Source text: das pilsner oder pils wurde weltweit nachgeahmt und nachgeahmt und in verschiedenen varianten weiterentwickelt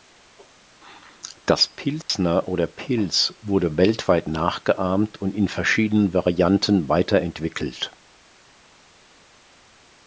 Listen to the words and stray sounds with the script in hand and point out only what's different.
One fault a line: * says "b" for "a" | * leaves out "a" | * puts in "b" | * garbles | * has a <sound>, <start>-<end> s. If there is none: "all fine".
* has a dropout, 2.0-2.1 s
* leaves out "nachgeahmt und"